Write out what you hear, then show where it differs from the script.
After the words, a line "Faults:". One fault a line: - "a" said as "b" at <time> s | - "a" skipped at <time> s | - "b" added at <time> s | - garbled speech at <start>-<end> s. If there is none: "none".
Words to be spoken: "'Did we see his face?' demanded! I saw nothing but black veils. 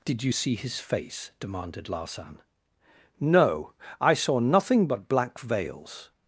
"'Did you see his face?' demanded Larsan. "'No! I saw nothing but black veils.
Faults:
- "we" said as "you" at 0.2 s
- "Larsan No" added at 1.9 s